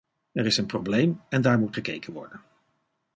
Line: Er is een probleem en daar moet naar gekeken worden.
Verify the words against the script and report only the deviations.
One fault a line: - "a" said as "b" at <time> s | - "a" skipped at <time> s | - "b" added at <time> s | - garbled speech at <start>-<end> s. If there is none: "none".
- "naar" skipped at 1.7 s